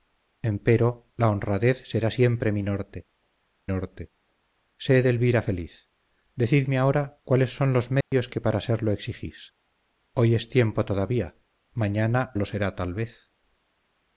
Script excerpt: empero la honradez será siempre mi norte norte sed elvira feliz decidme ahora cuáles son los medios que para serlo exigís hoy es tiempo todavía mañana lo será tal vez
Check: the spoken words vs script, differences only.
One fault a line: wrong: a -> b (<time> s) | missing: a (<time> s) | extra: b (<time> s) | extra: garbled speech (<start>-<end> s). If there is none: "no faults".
no faults